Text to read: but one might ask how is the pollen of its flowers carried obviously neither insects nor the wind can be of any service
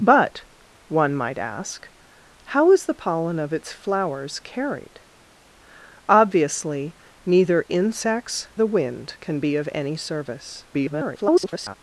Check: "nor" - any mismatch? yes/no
yes